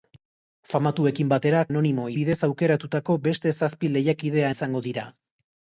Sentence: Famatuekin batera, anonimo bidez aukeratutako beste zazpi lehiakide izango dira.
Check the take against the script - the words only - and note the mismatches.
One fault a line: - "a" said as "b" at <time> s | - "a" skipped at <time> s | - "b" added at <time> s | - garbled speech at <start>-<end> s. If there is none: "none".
none